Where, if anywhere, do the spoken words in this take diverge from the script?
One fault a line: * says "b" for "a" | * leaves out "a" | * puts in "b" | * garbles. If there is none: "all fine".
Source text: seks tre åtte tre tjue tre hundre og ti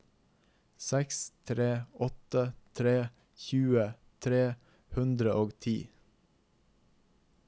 all fine